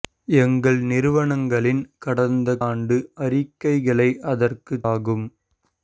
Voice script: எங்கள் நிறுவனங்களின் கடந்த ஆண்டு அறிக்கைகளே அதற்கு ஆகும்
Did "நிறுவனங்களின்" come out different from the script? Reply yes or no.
no